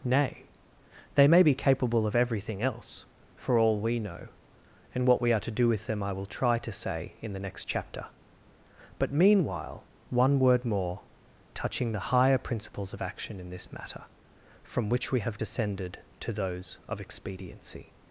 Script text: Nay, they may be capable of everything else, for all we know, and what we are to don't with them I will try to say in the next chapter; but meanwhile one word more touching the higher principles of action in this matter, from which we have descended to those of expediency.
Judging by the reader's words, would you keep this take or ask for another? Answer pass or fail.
fail